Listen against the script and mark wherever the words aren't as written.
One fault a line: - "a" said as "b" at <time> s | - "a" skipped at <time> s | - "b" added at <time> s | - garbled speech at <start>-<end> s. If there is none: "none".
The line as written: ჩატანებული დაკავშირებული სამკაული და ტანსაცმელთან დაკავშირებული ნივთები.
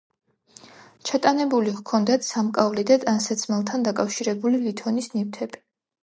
- "დაკავშირებული" said as "ჰქონდათ" at 1.8 s
- "ლითონის" added at 4.6 s